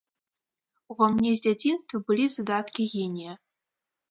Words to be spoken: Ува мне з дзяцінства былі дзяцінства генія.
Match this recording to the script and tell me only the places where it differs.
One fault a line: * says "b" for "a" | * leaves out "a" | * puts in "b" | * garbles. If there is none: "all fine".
* says "задаткі" for "дзяцінства"